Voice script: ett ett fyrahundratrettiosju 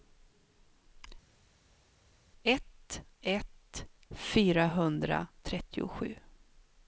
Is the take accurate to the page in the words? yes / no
yes